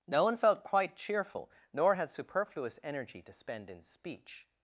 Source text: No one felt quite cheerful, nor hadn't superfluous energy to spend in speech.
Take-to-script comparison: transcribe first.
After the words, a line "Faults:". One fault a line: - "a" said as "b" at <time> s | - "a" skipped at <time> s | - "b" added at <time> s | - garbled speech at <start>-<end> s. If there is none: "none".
No one felt quite cheerful, nor had superfluous energy to spend in speech.
Faults:
- "hadn't" said as "had" at 1.9 s